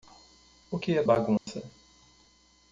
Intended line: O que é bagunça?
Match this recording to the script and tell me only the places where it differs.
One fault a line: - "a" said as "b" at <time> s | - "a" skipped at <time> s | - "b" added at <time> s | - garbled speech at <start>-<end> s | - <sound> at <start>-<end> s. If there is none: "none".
- dropout at 1.4-1.5 s